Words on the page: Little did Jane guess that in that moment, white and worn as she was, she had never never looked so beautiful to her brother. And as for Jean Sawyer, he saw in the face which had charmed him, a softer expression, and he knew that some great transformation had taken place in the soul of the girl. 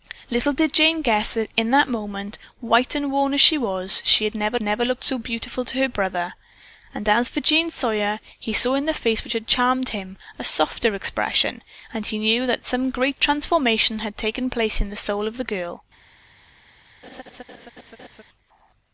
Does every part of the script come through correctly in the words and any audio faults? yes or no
no